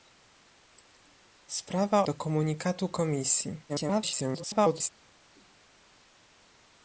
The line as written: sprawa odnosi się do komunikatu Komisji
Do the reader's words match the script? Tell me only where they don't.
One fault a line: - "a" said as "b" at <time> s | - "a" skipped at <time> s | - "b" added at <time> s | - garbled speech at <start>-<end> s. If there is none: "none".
- "odnosi się" skipped at 2.1 s
- garbled speech at 3.7-4.9 s